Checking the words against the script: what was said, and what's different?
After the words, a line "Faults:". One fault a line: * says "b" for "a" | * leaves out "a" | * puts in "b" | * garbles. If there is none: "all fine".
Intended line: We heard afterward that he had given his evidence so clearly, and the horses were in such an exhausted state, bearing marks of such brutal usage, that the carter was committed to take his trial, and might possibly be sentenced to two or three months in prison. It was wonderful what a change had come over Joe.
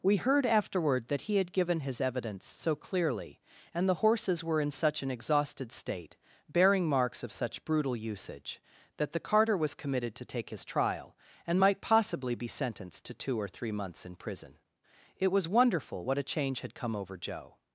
We heard afterward that he had given his evidence so clearly, and the horses were in such an exhausted state, bearing marks of such brutal usage, that the carter was committed to take his trial, and might possibly be sentenced to two or three months in prison. It was wonderful what a change had come over Joe.
Faults:
all fine